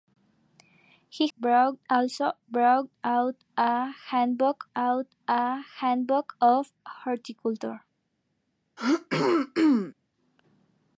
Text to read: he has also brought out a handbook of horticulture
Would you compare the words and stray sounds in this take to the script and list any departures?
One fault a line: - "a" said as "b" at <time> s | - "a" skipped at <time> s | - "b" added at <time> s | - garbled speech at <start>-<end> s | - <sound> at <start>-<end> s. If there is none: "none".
- "has" said as "brought" at 1.4 s
- "out a handbook" added at 4.7 s
- throat clearing at 8.8-9.9 s